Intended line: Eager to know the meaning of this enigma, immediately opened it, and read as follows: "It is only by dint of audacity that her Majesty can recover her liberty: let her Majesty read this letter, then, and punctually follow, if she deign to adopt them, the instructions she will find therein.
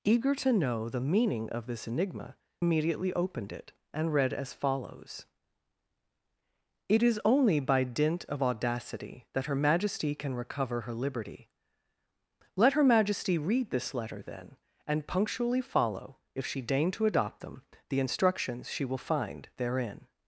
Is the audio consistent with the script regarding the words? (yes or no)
yes